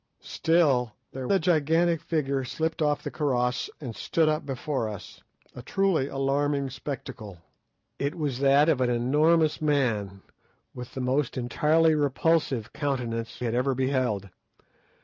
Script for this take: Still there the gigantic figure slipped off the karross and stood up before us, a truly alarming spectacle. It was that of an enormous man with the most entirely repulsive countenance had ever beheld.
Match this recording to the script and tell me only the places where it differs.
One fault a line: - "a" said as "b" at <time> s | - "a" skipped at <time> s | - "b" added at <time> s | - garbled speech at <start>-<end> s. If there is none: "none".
none